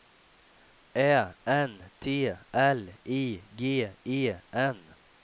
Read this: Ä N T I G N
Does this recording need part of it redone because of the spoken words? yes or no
yes